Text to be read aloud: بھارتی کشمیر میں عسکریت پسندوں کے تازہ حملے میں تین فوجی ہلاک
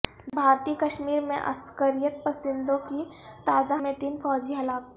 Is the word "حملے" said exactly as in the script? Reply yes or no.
no